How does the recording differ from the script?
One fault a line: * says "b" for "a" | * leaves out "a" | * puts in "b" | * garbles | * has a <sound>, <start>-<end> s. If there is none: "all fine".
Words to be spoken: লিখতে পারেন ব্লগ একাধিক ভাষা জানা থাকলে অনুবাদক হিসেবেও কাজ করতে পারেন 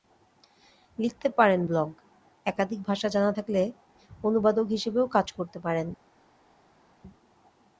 all fine